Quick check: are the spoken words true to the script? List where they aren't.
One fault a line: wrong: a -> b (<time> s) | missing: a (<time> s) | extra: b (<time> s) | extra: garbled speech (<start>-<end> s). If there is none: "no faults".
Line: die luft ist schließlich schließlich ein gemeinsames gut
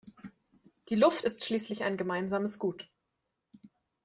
missing: schließlich (1.8 s)